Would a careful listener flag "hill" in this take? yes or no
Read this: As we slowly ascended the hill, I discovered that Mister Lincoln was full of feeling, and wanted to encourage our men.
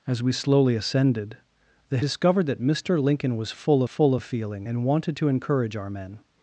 yes